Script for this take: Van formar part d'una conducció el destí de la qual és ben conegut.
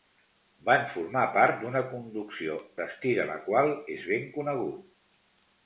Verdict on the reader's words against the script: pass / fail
fail